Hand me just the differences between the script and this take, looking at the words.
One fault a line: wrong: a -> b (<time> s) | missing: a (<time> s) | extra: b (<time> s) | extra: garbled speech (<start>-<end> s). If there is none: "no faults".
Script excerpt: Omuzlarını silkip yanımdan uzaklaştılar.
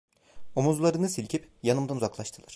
no faults